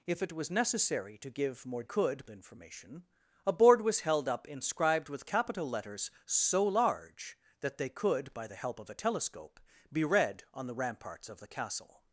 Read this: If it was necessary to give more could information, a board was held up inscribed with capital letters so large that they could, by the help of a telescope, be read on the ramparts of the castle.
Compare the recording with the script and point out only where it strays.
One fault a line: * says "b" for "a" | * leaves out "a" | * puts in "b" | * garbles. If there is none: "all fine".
all fine